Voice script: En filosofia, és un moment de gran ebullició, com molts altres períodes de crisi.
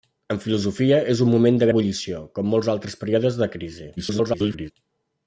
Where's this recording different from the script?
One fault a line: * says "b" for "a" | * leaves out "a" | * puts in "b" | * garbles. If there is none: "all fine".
* leaves out "gran"
* garbles